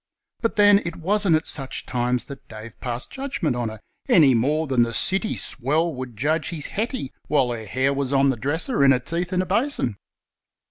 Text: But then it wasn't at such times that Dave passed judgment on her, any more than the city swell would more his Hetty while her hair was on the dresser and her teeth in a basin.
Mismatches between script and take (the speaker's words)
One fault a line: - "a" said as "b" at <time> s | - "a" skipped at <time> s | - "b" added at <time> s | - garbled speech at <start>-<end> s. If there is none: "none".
- "more" said as "judge" at 6.2 s